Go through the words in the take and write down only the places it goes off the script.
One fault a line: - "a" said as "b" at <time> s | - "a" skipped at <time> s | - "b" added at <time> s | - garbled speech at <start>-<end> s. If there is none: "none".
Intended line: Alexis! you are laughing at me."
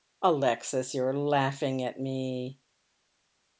none